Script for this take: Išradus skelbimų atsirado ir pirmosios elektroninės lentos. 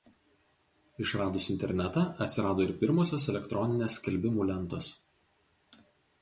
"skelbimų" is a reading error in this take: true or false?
true